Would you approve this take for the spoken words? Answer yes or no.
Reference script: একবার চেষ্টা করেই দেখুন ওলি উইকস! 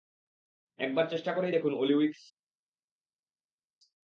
yes